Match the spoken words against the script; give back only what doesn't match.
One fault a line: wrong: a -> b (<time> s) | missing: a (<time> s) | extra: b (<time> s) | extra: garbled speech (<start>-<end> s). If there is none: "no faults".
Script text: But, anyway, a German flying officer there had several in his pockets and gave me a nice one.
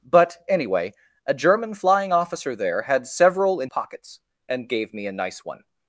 missing: his (3.7 s)